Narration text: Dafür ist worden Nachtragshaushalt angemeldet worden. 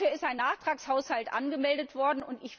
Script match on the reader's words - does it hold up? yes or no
no